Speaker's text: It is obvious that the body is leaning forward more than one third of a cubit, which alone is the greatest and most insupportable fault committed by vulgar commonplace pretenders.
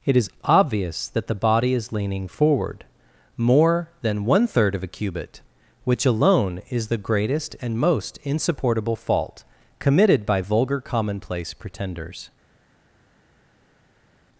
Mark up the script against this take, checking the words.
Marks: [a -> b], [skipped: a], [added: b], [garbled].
It is obvious that the body is leaning forward more than one third of a cubit, which alone is the greatest and most insupportable fault committed by vulgar commonplace pretenders.